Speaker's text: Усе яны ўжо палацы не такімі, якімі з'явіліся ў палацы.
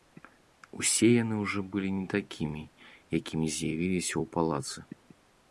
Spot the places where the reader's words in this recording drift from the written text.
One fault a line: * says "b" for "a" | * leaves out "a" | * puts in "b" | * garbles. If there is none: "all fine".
* says "былі" for "палацы"